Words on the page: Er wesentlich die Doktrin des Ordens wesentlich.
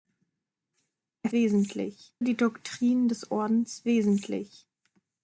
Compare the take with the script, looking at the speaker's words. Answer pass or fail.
pass